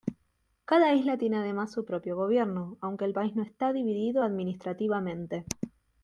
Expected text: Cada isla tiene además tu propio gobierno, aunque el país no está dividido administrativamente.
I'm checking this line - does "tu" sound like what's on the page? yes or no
no